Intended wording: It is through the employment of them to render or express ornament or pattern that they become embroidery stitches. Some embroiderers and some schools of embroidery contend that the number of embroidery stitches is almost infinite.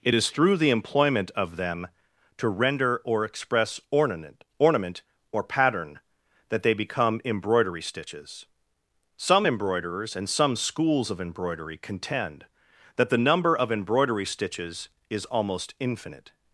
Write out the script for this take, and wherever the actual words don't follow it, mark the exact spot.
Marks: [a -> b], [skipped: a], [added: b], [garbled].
It is through the employment of them to render or express ornament [added: ornament] or pattern that they become embroidery stitches. Some embroiderers and some schools of embroidery contend that the number of embroidery stitches is almost infinite.